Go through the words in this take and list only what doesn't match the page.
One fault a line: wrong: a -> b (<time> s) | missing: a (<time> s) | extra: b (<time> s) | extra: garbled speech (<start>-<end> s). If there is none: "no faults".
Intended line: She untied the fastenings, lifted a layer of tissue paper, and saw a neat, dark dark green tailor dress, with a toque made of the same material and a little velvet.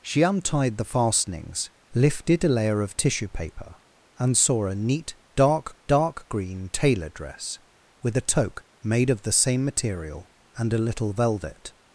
no faults